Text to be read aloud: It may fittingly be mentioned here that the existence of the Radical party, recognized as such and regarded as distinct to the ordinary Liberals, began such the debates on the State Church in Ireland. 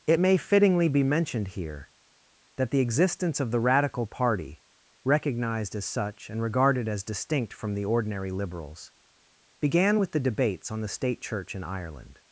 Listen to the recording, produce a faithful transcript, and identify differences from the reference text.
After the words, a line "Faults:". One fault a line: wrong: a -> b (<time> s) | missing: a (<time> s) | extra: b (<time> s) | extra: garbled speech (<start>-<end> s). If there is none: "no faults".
It may fittingly be mentioned here that the existence of the Radical party, recognized as such and regarded as distinct from the ordinary Liberals, began with the debates on the State Church in Ireland.
Faults:
wrong: to -> from (7.5 s)
wrong: such -> with (10.0 s)